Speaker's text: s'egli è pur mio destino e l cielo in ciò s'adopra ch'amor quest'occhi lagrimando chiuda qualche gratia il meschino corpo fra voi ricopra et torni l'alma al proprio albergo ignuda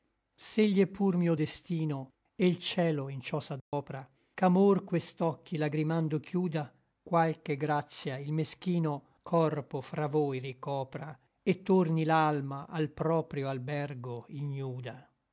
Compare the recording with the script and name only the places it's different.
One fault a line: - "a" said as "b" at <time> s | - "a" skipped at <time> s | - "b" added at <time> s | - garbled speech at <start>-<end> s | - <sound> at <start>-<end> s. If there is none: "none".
- dropout at 3.6-3.7 s